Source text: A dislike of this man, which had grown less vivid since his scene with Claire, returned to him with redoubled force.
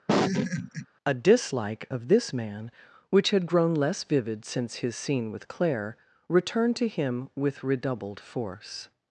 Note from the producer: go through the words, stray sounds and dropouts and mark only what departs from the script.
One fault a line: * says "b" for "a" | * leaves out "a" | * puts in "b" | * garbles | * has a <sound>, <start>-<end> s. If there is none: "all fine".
* has a laugh, 0.1-0.9 s